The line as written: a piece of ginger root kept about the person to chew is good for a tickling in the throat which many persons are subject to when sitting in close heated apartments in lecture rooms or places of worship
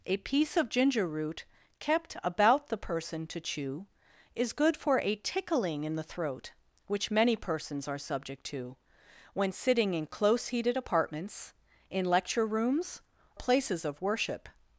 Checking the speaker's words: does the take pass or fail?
fail